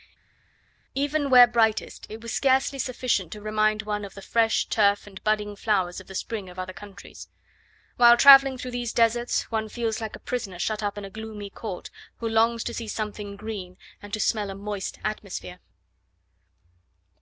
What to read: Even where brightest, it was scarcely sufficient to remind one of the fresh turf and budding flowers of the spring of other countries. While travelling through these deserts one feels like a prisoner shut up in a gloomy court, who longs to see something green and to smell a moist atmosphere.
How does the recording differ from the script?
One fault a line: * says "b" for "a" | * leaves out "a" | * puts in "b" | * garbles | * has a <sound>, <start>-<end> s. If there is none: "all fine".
all fine